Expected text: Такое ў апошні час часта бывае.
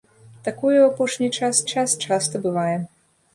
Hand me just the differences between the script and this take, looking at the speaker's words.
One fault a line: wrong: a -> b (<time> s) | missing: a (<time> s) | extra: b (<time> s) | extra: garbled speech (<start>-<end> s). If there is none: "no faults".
extra: час (1.7 s)